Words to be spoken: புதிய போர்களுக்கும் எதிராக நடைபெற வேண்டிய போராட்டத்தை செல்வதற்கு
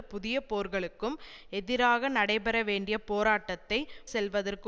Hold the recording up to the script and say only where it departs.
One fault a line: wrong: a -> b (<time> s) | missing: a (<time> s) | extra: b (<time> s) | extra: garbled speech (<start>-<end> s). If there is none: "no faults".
no faults